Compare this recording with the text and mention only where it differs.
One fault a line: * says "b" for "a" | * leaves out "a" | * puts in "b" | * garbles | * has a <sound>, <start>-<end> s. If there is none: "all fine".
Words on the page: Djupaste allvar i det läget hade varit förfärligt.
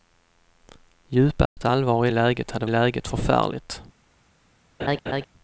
* has a dropout, 1.5-1.6 s
* leaves out "det"
* says "läget" for "varit"
* has a laugh, 4.8-5.3 s